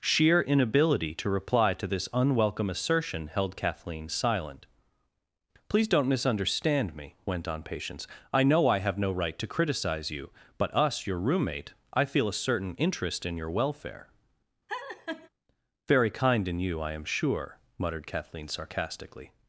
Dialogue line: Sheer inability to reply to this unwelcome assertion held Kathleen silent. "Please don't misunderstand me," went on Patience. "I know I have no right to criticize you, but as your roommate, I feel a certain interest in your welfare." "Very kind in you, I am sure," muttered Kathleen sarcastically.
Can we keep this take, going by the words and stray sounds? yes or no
no